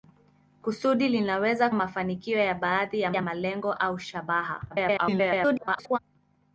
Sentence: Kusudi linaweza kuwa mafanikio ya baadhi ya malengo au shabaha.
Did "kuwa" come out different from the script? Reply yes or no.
yes